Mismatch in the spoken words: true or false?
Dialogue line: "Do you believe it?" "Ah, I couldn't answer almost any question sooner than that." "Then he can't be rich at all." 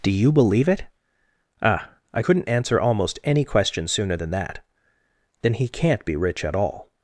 false